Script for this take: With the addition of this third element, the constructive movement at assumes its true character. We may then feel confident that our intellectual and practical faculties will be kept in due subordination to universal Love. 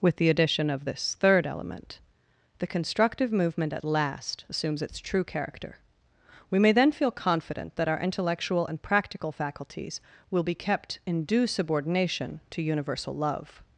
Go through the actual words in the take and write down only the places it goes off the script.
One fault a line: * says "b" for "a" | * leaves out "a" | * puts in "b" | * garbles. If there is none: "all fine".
* puts in "last"